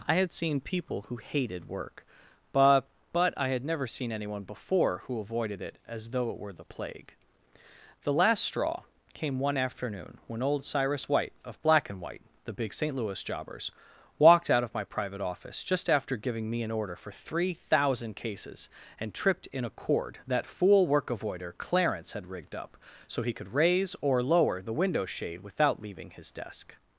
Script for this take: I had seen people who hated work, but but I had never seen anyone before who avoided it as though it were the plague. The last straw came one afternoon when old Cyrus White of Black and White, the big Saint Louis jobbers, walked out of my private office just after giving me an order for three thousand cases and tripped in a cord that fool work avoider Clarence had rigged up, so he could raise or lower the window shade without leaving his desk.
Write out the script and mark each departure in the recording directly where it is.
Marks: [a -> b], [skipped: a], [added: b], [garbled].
I had seen people who hated work, but but I had never seen anyone before who avoided it as though it were the plague. The last straw came one afternoon when old Cyrus White of Black and White, the big Saint Louis jobbers, walked out of my private office just after giving me an order for three thousand cases and tripped in a cord that fool work avoider Clarence had rigged up, so he could raise or lower the window shade without leaving his desk.